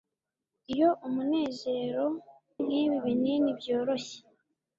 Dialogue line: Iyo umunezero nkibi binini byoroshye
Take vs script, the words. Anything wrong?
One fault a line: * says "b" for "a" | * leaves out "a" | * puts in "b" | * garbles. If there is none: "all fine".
all fine